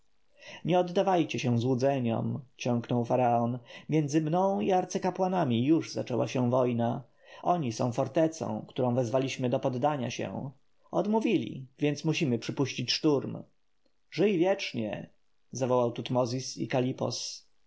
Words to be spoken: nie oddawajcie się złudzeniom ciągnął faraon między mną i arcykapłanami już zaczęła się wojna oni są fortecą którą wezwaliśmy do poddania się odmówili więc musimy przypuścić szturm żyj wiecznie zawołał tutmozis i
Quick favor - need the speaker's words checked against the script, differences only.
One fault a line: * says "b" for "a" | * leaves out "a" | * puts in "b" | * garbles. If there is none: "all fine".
all fine